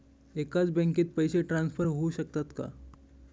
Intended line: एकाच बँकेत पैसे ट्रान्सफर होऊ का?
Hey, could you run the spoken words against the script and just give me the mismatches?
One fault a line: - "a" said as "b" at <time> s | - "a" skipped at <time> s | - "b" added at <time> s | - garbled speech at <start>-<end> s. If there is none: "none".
- "शकतात" added at 2.1 s